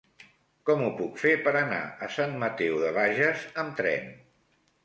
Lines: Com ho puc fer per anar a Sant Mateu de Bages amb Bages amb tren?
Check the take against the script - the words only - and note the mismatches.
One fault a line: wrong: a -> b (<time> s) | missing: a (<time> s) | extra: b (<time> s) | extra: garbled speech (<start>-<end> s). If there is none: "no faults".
missing: Bages amb (3.8 s)